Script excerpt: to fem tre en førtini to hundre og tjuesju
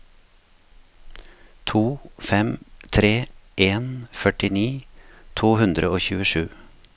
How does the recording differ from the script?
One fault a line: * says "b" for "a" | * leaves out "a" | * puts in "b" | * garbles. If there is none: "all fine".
all fine